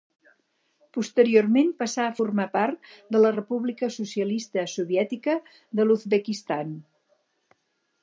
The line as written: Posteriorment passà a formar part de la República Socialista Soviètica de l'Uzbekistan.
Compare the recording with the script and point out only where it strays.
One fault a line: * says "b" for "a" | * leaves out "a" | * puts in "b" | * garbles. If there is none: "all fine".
all fine